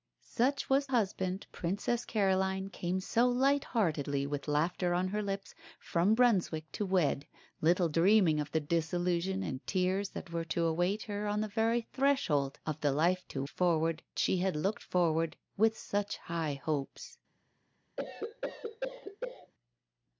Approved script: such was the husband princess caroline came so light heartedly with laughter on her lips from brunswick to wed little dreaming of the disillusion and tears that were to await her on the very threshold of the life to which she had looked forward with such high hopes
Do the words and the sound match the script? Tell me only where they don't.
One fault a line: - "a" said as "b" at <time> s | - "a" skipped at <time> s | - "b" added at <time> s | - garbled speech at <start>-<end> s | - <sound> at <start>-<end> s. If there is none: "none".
- "the" skipped at 0.9 s
- "which" said as "forward" at 13.5 s
- cough at 18.0-19.5 s